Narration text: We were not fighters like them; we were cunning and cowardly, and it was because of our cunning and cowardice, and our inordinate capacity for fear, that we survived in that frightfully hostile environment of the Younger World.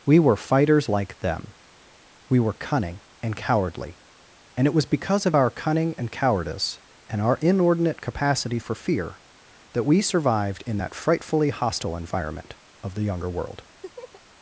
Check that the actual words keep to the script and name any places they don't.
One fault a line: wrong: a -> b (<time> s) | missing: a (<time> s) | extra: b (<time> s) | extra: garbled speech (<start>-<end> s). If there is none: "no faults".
missing: not (0.3 s)